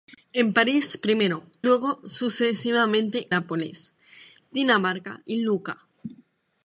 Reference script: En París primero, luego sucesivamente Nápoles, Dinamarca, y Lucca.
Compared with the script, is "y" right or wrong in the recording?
right